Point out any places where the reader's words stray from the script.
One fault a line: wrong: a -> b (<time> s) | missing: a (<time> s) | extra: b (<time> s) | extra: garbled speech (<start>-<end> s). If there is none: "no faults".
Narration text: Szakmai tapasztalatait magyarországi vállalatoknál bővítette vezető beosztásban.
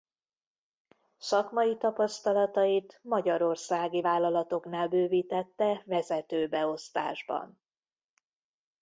no faults